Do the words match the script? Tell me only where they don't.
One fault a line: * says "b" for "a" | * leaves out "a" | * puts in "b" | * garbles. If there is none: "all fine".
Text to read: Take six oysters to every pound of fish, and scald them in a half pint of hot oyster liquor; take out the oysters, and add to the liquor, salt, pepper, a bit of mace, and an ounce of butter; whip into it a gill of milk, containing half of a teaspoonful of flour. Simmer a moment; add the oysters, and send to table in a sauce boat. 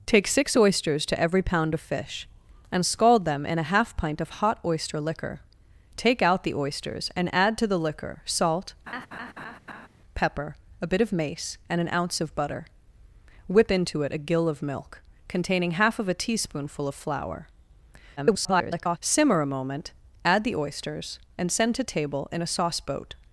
* garbles